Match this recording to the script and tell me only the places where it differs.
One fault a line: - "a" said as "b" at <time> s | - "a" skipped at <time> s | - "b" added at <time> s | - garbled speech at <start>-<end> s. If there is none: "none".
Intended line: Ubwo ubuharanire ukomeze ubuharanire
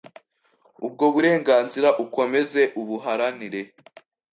- "ubuharanire" said as "burenganzira" at 1.1 s